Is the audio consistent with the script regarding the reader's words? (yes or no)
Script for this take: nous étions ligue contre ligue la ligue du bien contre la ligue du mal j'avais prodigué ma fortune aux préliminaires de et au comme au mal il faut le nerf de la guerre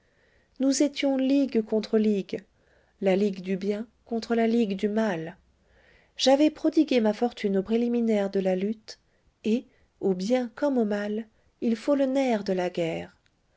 no